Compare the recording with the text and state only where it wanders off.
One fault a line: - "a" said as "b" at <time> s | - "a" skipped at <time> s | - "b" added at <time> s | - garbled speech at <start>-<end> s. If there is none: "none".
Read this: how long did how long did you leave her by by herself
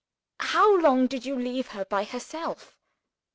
- "how long did" skipped at 1.3 s
- "by" skipped at 2.0 s